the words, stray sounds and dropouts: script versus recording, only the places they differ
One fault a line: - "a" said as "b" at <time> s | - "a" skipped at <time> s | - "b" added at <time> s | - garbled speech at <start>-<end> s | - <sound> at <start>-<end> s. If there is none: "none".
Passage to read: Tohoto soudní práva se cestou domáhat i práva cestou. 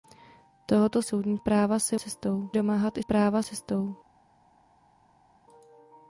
none